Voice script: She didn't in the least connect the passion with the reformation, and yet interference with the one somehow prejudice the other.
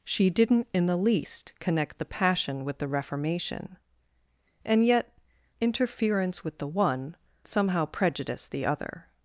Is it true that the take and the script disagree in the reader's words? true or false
false